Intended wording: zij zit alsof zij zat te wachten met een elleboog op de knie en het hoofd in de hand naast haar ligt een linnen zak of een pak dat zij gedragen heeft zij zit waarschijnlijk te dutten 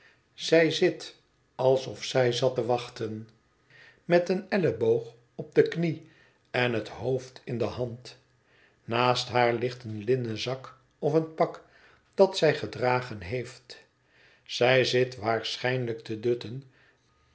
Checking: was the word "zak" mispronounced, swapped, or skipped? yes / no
no